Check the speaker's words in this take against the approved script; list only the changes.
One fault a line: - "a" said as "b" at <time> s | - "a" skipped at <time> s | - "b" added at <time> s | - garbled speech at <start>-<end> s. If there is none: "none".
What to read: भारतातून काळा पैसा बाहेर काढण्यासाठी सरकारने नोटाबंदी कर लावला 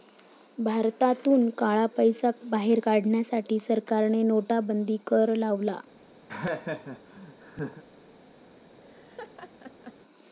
none